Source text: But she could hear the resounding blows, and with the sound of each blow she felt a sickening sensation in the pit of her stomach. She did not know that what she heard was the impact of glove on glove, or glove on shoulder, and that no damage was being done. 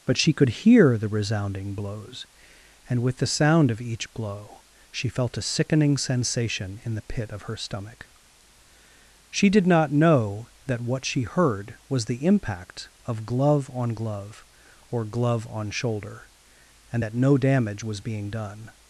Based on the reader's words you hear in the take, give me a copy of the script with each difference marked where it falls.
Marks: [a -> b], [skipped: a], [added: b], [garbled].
But she could hear the resounding blows, and with the sound of each blow she felt a sickening sensation in the pit of her stomach. She did not know that what she heard was the impact of glove on glove, or glove on shoulder, and that no damage was being done.